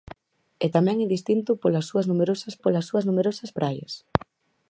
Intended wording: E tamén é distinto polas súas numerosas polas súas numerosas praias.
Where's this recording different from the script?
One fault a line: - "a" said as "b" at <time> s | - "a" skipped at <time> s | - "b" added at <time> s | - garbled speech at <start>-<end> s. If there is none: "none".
none